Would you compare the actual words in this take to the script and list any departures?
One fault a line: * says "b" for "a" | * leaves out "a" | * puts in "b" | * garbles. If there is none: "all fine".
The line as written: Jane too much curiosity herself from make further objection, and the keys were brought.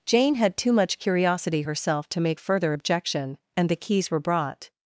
* puts in "had"
* says "to" for "from"